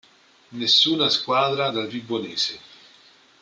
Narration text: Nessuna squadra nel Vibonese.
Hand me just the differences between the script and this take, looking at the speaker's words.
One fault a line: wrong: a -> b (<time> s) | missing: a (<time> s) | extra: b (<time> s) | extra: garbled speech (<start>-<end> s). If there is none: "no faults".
wrong: nel -> dal (1.7 s)